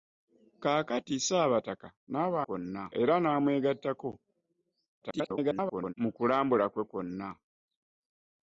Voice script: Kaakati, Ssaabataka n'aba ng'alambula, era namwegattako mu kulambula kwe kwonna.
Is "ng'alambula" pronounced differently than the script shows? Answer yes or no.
yes